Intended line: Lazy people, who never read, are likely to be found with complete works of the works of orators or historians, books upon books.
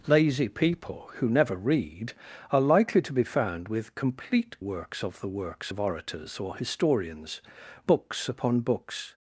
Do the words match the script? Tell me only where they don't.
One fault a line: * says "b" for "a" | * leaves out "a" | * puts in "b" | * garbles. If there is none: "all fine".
all fine